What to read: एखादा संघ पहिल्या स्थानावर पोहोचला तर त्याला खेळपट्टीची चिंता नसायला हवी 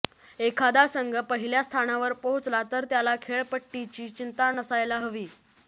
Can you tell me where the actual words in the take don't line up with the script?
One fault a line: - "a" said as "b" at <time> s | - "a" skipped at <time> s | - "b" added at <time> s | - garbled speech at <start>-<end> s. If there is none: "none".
none